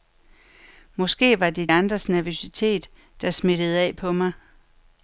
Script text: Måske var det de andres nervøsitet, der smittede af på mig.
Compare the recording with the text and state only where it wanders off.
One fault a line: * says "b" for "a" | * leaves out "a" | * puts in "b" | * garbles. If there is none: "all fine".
* leaves out "de"